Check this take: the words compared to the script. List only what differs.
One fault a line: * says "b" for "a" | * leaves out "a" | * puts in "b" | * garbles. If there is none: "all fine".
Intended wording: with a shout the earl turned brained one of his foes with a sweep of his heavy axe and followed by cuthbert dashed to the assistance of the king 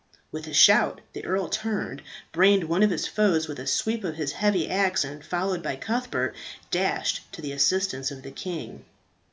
all fine